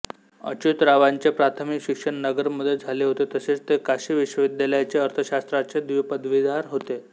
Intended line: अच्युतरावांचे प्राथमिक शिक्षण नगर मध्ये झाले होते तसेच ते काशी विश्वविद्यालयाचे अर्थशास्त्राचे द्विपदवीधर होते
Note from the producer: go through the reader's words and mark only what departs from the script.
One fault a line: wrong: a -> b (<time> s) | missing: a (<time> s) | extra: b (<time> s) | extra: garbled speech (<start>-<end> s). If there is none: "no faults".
no faults